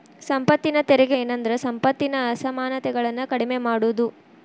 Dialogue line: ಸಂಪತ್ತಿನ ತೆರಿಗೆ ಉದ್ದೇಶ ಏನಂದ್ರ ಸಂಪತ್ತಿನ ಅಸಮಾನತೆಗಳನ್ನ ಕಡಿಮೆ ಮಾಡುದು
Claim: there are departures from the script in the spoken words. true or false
true